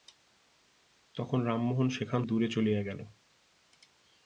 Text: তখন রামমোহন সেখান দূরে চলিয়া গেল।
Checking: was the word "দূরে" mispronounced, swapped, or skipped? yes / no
no